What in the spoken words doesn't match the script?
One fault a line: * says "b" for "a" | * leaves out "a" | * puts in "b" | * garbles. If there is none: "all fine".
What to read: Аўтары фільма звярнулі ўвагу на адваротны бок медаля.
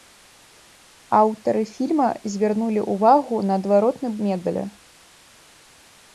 * leaves out "бок"